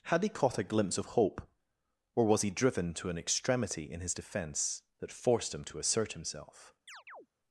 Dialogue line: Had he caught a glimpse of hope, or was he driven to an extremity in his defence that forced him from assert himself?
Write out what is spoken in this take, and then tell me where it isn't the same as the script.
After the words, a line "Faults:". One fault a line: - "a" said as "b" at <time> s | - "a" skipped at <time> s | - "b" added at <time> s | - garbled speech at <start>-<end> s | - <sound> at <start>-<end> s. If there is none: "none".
Had he caught a glimpse of hope, or was he driven to an extremity in his defence that forced him to assert himself?
Faults:
- "from" said as "to" at 5.7 s
- chirp at 6.9-7.3 s